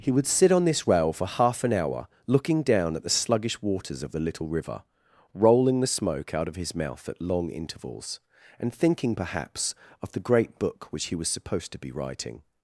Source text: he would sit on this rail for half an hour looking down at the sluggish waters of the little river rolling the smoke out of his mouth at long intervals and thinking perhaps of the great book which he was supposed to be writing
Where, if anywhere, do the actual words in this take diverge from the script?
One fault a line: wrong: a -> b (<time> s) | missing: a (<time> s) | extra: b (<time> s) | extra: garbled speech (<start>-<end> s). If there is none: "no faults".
no faults